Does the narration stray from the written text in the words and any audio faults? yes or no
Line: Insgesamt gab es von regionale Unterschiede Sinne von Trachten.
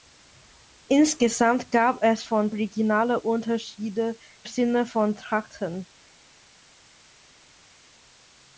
no